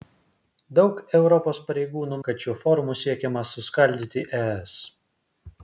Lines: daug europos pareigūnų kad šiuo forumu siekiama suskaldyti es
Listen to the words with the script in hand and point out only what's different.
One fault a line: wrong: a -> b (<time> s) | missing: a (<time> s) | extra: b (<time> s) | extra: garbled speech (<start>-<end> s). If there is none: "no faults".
no faults